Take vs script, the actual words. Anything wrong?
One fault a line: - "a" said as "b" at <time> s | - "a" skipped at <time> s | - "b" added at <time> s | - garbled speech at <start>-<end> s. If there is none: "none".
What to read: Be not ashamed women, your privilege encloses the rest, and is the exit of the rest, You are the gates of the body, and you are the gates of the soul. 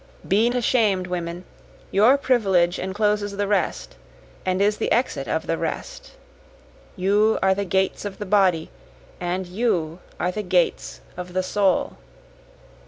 - "not" skipped at 0.5 s